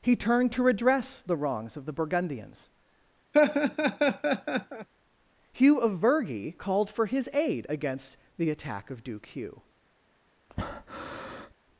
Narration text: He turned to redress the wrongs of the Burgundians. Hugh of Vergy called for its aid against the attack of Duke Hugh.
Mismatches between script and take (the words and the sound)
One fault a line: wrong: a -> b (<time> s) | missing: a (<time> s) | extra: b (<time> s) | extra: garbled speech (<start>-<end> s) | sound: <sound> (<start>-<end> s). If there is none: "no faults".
sound: laugh (3.3-4.9 s)
wrong: its -> his (7.1 s)
sound: breath (10.5-11.5 s)